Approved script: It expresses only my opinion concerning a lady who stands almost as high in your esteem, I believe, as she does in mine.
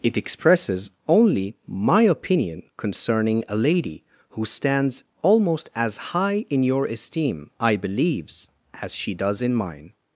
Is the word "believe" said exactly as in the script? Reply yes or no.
no